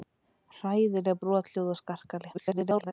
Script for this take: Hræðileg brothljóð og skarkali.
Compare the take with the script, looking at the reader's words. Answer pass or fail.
fail